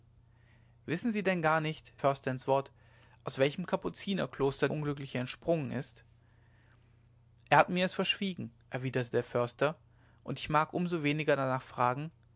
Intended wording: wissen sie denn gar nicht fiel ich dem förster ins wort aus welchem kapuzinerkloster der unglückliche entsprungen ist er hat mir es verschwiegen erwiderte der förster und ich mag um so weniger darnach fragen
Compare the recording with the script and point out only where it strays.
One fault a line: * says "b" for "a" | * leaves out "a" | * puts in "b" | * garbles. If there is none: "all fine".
* leaves out "fiel ich dem"
* leaves out "der"